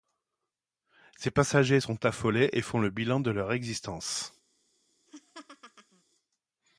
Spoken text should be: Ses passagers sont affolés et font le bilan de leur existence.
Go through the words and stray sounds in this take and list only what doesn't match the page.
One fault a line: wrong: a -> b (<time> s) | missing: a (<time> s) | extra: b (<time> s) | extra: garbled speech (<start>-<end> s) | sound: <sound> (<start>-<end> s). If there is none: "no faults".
sound: laugh (5.1-6.0 s)